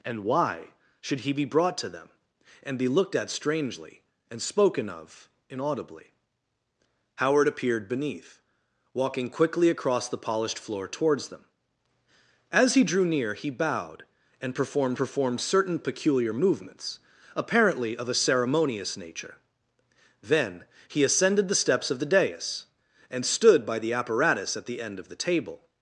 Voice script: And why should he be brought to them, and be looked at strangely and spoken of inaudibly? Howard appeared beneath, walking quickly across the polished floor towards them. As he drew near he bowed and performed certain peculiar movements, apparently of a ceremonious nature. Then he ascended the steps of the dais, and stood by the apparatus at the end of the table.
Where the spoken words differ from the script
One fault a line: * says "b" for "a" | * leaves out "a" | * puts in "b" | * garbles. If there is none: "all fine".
* puts in "performed"